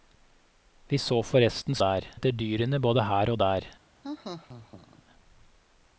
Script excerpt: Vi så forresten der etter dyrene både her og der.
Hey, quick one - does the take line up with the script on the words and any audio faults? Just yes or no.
no